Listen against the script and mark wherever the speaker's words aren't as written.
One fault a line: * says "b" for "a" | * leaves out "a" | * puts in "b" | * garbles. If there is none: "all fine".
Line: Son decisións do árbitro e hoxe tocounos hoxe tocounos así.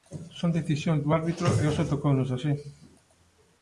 * leaves out "hoxe tocounos"